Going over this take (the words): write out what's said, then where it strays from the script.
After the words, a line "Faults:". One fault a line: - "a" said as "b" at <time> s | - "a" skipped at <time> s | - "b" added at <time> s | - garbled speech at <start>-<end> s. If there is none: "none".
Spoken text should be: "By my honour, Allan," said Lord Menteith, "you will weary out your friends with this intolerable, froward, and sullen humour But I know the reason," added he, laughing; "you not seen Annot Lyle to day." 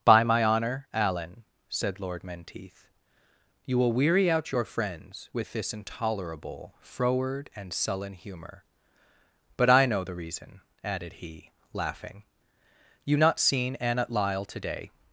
"By my honour, Allan," said Lord Menteith, "you will weary out your friends with this intolerable, froward, and sullen humour But I know the reason," added he, laughing; "you not seen Annot Lyle to day."
Faults:
none